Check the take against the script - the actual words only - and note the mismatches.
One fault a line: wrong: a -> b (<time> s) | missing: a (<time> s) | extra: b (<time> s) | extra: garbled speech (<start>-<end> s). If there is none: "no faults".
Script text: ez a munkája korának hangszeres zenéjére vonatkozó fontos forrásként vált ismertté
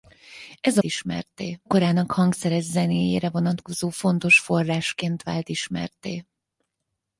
wrong: munkája -> ismertté (0.8 s)